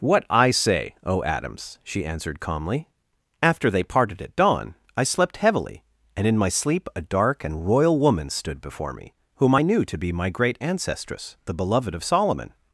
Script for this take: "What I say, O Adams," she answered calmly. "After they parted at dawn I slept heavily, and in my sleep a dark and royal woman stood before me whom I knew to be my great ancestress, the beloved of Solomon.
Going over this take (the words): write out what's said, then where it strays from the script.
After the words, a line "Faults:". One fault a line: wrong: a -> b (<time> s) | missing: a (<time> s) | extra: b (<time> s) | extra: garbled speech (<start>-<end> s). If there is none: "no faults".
"What I say, O Adams," she answered calmly. "After they parted at dawn I slept heavily, and in my sleep a dark and royal woman stood before me whom I knew to be my great ancestress, the beloved of Solomon.
Faults:
no faults